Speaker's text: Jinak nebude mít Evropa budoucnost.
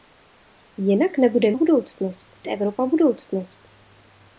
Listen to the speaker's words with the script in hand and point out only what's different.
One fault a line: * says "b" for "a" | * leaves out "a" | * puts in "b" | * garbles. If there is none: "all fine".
* says "budoucnost" for "mít"